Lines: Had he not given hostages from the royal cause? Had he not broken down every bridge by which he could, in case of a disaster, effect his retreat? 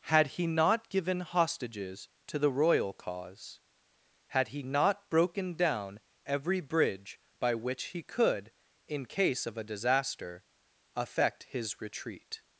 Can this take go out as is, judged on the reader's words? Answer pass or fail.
fail